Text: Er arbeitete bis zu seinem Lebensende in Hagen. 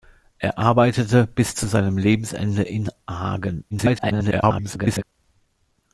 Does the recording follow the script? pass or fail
fail